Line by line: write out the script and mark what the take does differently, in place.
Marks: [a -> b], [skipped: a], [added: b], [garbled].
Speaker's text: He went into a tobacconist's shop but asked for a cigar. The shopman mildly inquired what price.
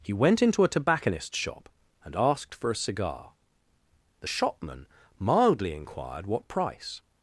He went into a tobacconist's shop [but -> and] asked for a cigar. The shopman mildly inquired what price.